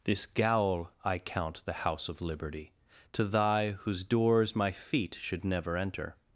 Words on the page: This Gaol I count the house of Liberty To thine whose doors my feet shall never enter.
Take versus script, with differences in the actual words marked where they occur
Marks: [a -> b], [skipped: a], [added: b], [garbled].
This Gaol I count the house of Liberty To [thine -> thy] whose doors my feet [shall -> should] never enter.